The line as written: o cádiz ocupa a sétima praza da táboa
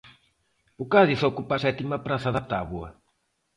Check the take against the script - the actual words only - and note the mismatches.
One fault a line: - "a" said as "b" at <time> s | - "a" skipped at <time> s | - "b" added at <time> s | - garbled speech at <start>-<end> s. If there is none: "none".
none